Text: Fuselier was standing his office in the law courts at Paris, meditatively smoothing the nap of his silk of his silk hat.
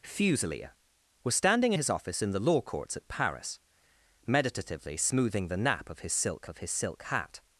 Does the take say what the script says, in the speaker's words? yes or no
yes